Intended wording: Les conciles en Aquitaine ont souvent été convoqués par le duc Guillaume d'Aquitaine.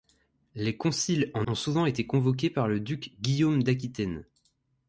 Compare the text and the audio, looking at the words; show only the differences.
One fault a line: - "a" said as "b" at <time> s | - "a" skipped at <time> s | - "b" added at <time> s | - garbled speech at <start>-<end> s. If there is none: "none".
- "Aquitaine" skipped at 1.5 s